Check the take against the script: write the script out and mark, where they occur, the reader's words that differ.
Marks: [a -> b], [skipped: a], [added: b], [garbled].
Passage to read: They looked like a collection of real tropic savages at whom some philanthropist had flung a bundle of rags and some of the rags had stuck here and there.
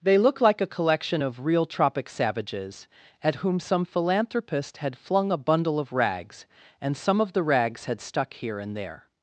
They [looked -> look] like a collection of real tropic savages at whom some philanthropist had flung a bundle of rags and some of the rags had stuck here and there.